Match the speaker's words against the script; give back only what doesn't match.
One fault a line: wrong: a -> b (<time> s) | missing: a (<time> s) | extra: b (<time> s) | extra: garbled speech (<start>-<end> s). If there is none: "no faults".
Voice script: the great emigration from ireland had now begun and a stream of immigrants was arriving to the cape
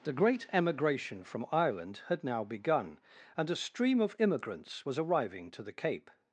no faults